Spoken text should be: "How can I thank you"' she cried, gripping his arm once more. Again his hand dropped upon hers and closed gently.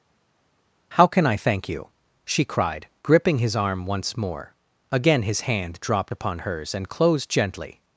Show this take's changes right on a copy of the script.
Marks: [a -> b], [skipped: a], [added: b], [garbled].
"How can I thank you"' she cried, gripping his arm once more. Again his hand dropped upon hers and closed gently.